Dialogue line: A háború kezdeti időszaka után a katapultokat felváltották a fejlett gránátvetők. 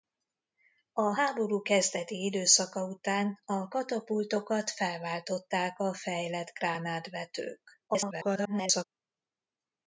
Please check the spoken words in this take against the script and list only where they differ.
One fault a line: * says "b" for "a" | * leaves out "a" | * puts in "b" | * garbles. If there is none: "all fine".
* garbles